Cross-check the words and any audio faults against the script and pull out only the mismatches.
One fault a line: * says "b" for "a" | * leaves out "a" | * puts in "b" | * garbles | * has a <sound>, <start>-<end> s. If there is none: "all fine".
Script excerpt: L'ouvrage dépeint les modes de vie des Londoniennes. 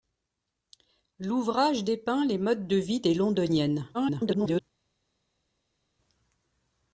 * garbles